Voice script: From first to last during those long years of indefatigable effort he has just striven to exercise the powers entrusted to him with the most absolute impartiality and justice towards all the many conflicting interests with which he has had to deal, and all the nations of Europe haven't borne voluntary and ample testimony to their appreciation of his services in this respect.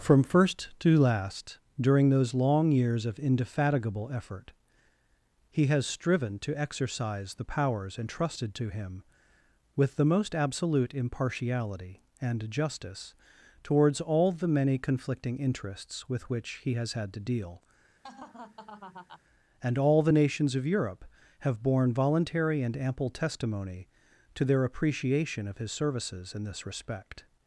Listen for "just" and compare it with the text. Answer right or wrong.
wrong